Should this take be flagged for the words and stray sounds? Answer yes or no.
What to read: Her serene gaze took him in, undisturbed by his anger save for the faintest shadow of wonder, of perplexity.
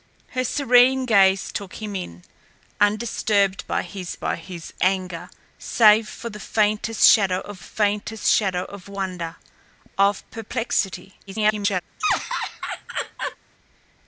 yes